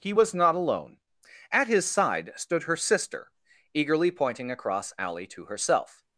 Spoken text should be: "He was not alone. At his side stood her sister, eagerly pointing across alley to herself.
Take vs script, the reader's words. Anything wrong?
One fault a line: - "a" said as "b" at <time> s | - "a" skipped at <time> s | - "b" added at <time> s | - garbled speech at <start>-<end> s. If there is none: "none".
none